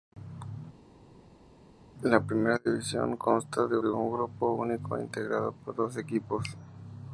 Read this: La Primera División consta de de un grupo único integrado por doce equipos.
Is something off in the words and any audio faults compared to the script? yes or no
no